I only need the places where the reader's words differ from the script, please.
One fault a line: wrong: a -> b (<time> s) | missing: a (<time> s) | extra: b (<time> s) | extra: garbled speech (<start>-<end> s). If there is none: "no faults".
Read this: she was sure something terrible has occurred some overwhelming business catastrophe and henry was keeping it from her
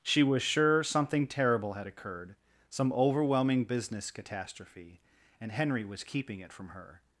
wrong: has -> had (1.7 s)